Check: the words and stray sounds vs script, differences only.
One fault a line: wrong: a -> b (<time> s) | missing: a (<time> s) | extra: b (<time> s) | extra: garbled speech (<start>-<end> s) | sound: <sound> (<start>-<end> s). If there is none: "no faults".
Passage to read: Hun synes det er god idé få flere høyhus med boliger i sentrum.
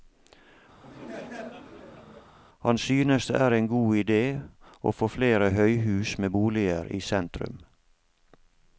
sound: laugh (0.8-2.3 s)
wrong: Hun -> Han (2.6 s)
extra: en (3.5 s)
extra: å (4.8 s)